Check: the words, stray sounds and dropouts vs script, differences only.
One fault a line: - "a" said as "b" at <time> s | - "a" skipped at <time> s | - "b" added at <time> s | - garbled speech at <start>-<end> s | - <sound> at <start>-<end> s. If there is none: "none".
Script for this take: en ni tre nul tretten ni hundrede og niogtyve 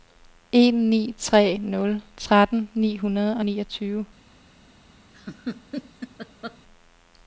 - laugh at 5.1-6.6 s